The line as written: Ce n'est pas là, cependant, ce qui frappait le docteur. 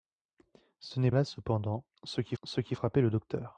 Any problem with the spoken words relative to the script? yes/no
yes